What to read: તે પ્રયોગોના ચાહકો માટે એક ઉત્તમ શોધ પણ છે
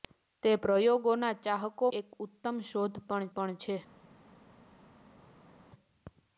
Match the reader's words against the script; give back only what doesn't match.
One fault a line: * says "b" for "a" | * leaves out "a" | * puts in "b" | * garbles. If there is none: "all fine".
* leaves out "માટે"
* puts in "પણ"